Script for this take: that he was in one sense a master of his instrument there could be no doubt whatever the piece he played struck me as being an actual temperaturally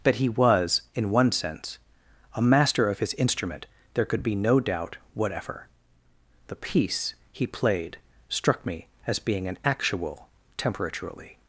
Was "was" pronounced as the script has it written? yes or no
yes